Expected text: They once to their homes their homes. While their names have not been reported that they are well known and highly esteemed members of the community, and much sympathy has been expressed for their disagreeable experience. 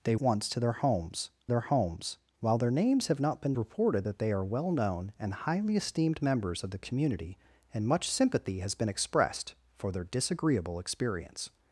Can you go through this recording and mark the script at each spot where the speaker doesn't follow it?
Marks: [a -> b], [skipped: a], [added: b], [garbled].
They once to their homes their homes. While their names have not been reported that they are well known and highly esteemed members of the community, and much sympathy has been expressed for their disagreeable experience.